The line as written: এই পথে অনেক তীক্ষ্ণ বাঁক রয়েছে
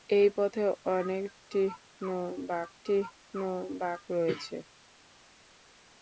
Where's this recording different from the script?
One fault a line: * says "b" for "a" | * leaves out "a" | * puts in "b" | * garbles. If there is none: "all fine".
* puts in "তীক্ষ্ণ বাঁক"